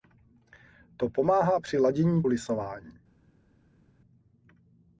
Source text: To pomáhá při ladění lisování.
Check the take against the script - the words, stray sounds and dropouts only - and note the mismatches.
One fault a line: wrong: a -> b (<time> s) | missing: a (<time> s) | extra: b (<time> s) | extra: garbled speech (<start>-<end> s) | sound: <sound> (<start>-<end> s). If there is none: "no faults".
no faults